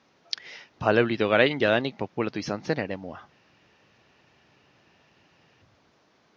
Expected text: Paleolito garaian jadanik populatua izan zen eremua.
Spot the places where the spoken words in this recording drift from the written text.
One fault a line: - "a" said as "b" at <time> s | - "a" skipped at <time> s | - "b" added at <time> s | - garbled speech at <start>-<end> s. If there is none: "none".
none